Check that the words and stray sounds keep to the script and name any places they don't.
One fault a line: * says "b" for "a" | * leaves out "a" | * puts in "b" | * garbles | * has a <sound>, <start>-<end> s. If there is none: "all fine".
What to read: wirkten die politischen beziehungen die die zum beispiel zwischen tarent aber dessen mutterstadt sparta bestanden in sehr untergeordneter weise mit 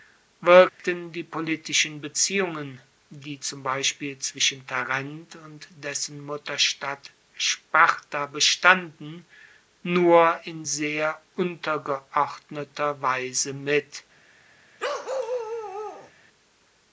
* has a dropout, 0.7-0.8 s
* leaves out "die"
* says "und" for "aber"
* puts in "nur"
* has a bark, 14.8-16.1 s